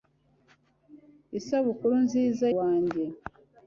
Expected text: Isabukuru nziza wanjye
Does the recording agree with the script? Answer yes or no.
yes